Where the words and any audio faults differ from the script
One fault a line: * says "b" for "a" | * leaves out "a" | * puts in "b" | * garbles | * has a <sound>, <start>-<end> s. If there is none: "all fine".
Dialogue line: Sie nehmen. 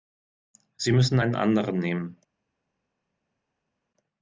* puts in "müssen einen anderen"